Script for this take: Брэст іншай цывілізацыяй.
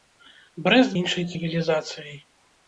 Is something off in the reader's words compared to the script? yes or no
no